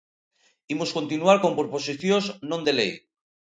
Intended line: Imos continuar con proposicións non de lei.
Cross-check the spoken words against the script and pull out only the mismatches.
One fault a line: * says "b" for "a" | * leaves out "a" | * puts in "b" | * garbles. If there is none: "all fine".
all fine